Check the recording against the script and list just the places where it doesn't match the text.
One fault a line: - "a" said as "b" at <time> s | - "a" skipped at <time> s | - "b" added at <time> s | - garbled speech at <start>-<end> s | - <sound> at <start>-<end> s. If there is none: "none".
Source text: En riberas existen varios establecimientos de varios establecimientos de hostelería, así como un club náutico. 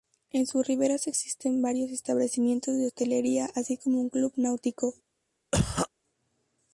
- "sus" added at 0.5 s
- "varios establecimientos de" skipped at 2.9 s
- cough at 5.5-5.9 s